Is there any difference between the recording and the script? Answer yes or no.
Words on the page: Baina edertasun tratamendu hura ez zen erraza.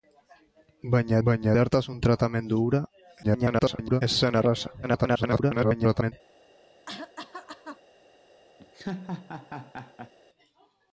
yes